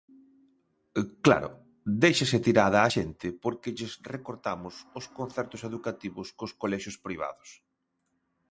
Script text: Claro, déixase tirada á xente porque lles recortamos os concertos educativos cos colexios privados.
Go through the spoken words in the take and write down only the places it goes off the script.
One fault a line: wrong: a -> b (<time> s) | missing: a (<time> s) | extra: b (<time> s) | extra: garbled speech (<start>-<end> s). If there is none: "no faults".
no faults